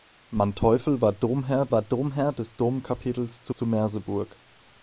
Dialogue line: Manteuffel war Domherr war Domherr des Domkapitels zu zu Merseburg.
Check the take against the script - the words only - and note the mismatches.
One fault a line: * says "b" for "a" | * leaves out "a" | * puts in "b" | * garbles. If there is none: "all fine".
all fine